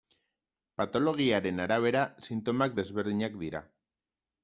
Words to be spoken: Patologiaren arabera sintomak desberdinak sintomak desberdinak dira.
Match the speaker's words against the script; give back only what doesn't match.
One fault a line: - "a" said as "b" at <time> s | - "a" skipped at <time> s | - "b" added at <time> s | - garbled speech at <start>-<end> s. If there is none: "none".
- "sintomak desberdinak" skipped at 3.4 s